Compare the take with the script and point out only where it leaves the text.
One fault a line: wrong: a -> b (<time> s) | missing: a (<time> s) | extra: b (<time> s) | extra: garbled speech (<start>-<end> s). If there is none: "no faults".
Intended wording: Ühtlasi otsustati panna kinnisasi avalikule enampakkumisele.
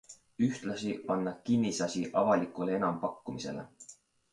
missing: otsustati (0.9 s)